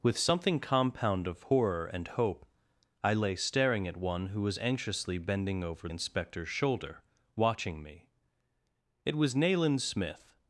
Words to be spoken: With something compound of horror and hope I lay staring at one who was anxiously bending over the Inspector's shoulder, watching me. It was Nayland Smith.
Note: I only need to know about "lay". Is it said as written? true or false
true